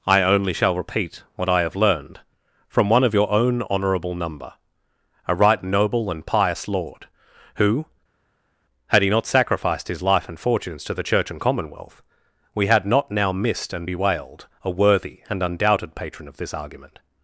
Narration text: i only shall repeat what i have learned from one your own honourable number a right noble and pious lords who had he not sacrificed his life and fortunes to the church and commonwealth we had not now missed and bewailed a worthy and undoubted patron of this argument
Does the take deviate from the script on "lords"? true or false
true